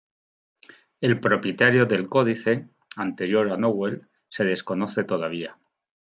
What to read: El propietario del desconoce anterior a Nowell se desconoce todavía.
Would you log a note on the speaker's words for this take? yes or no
yes